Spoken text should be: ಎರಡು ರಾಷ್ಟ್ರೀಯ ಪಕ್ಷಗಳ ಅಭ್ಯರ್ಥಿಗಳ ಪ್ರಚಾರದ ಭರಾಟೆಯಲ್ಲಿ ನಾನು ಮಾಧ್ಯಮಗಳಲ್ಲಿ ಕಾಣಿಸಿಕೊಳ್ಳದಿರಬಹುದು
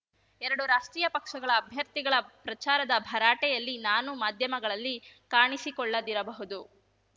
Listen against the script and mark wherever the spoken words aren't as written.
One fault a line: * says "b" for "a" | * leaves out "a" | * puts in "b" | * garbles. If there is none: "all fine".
all fine